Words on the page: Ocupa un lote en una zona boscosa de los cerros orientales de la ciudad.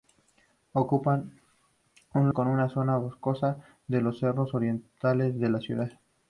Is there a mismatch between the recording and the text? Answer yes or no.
yes